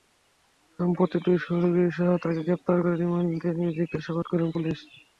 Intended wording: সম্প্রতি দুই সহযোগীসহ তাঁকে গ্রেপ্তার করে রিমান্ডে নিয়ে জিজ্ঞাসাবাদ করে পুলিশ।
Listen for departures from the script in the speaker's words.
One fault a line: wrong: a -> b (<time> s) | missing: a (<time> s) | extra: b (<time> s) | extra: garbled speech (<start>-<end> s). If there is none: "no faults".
no faults